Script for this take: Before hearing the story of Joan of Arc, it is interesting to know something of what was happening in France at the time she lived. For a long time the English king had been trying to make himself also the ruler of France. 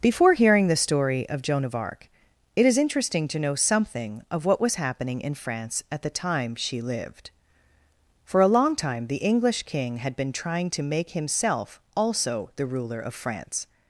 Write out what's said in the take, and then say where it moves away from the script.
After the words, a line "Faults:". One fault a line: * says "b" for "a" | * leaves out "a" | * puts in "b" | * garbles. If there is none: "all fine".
Before hearing the story of Joan of Arc, it is interesting to know something of what was happening in France at the time she lived. For a long time the English king had been trying to make himself also the ruler of France.
Faults:
all fine